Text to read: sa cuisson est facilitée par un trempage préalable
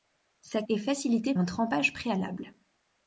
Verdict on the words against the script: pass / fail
fail